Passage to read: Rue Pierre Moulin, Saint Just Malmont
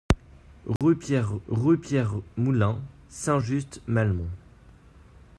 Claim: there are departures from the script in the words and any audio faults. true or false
true